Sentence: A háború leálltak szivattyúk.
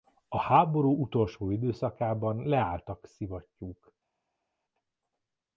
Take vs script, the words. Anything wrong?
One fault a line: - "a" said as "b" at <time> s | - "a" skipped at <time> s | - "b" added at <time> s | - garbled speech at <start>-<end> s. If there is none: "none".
- "utolsó időszakában" added at 1.0 s